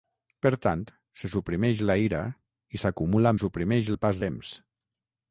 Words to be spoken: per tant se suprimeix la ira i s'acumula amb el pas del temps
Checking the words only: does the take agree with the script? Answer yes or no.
no